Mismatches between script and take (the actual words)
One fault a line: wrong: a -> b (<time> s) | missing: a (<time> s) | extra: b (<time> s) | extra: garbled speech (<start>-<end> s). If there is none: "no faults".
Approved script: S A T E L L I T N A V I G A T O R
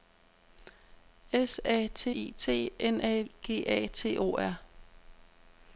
missing: E L L (2.1 s)
missing: V (3.2 s)